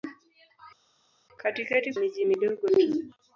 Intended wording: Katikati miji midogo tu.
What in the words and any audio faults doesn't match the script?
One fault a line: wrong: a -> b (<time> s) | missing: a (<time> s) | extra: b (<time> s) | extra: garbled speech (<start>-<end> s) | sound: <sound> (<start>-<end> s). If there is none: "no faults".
no faults